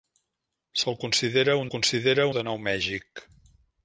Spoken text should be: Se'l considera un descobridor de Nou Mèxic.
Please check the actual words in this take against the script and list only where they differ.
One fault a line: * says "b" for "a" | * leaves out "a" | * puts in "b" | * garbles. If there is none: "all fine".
* says "considera" for "descobridor"